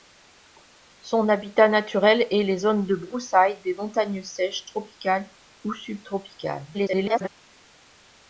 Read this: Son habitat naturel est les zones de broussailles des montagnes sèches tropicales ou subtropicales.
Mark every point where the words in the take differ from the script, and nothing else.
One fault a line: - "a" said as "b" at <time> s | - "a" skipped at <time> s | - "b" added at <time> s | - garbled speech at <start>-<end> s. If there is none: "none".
- garbled speech at 6.7-7.3 s